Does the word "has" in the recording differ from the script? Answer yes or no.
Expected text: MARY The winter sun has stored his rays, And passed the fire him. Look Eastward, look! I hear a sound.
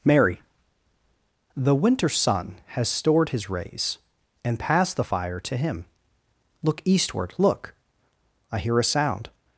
no